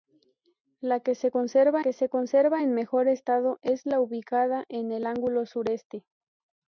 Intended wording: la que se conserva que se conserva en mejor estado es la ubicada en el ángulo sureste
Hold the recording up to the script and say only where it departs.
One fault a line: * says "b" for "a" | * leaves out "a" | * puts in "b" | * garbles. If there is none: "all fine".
all fine